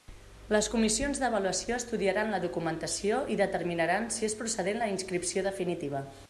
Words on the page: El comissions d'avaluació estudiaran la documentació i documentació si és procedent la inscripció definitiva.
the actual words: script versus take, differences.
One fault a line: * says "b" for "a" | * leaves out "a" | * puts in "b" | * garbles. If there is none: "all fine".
* says "Les" for "El"
* says "determinaran" for "documentació"